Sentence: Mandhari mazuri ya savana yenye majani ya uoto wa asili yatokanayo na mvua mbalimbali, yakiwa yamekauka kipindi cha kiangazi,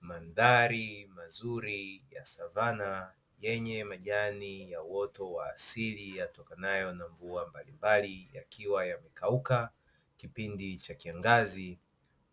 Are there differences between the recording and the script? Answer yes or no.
no